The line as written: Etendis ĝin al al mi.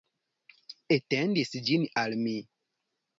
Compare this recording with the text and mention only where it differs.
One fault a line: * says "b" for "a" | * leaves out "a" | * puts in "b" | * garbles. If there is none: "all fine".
* leaves out "al"